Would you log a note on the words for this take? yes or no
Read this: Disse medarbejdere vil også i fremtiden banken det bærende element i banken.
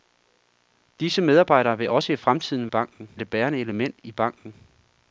no